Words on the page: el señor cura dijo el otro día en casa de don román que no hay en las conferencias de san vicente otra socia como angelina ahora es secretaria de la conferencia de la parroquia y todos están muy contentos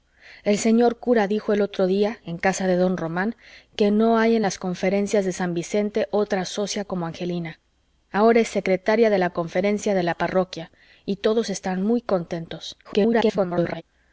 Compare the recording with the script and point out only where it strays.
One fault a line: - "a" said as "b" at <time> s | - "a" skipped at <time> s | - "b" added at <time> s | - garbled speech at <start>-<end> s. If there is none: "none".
- garbled speech at 12.8-13.8 s